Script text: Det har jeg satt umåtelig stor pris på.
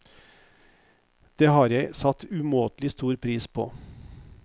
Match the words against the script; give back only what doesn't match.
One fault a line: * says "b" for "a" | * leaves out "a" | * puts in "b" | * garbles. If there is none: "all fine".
all fine